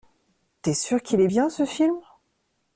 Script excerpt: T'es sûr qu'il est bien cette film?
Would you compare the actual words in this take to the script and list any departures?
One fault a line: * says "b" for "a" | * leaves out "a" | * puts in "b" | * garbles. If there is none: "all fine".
* says "ce" for "cette"